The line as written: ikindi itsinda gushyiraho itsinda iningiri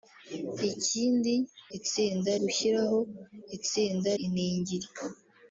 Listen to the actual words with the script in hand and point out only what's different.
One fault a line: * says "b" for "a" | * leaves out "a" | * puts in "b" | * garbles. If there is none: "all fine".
all fine